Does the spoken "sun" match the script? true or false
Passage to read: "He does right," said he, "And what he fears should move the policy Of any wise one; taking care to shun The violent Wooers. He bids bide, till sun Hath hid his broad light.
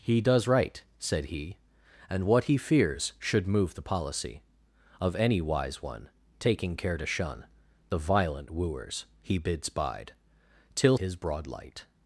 false